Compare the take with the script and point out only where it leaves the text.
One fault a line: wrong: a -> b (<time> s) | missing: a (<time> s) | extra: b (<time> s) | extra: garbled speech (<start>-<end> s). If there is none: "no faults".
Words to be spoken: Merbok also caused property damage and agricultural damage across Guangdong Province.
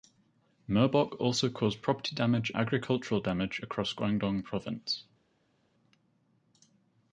missing: and (2.5 s)